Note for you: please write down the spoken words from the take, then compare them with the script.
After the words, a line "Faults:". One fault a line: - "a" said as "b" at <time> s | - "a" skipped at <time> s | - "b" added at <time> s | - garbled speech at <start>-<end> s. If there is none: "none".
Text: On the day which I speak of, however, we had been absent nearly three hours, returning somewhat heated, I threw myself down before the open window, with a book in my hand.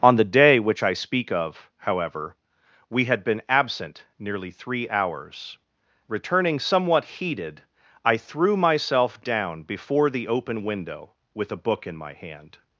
On the day which I speak of, however, we had been absent nearly three hours, returning somewhat heated, I threw myself down before the open window, with a book in my hand.
Faults:
none